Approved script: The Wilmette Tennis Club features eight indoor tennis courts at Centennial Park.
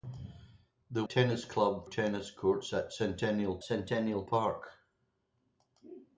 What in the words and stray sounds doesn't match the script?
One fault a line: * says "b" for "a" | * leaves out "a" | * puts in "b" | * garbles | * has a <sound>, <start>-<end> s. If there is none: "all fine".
* leaves out "Wilmette"
* leaves out "features eight indoor"
* puts in "Centennial"